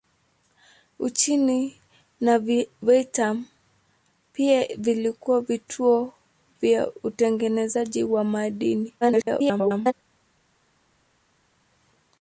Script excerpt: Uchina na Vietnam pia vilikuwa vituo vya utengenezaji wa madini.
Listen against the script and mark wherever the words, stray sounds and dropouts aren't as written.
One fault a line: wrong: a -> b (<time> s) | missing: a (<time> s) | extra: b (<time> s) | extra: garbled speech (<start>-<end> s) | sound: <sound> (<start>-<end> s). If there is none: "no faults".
extra: garbled speech (9.0-9.9 s)